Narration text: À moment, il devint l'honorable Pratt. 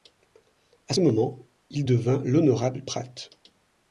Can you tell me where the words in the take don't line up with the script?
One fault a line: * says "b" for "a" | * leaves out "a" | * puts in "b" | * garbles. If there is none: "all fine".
all fine